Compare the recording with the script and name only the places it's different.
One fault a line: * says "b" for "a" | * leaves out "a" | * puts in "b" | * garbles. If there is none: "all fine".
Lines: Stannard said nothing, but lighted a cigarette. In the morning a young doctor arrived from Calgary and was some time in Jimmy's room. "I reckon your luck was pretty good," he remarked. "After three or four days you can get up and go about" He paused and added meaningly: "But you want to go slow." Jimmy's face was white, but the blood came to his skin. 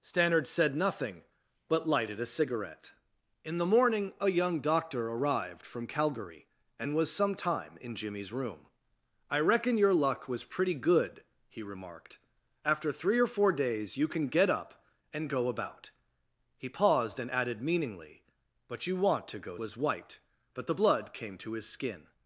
* leaves out "slow Jimmy's face"